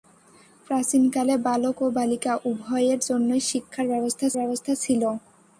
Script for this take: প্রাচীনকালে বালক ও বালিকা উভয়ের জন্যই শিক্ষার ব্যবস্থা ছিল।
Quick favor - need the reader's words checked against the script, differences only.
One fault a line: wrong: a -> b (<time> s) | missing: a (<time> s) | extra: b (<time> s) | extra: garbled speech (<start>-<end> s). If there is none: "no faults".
extra: ব্যবস্থা (4.4 s)